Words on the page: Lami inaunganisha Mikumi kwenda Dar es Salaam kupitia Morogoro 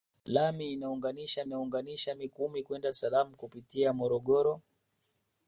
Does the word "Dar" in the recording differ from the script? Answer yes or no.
yes